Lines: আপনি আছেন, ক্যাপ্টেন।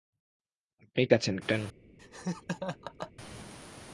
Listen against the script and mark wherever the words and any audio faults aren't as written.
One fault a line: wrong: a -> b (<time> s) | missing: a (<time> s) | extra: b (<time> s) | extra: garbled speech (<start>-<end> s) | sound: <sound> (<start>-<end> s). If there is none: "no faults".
sound: laugh (2.0-3.1 s)